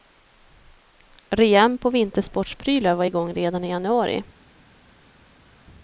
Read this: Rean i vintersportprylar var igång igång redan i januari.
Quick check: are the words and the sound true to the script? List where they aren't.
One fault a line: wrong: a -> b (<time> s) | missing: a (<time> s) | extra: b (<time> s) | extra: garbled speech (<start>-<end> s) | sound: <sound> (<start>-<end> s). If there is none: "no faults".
wrong: i -> på (1.8 s)
missing: igång (3.3 s)